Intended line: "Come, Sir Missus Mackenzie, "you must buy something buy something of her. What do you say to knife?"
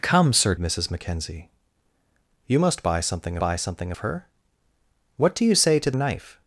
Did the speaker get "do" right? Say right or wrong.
right